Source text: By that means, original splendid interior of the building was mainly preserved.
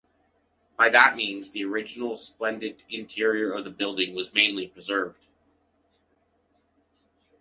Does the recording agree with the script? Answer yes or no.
no